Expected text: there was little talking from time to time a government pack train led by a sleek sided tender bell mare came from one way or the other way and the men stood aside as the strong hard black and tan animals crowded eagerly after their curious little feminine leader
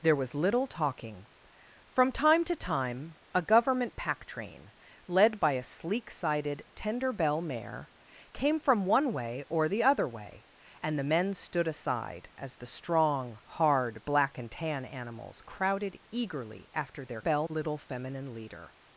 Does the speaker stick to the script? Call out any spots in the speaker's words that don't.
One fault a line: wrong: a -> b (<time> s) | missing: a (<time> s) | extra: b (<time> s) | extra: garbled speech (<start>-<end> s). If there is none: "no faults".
wrong: curious -> bell (17.2 s)